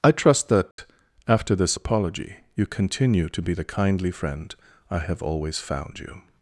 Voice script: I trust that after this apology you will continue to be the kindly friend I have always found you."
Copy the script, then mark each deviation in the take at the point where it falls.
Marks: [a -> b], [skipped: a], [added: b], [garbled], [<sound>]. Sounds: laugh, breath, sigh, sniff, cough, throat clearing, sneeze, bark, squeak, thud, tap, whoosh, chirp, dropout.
I trust that [dropout] after this apology you [skipped: will] continue to be the kindly friend I have always found you."